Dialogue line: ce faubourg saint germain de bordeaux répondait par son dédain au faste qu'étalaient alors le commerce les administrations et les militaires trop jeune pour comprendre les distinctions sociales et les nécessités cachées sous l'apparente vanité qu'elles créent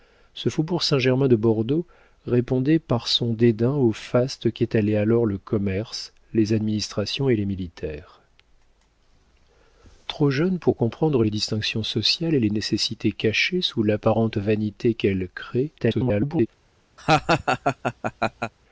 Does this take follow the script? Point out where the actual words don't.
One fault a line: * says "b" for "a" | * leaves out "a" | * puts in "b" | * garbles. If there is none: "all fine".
* garbles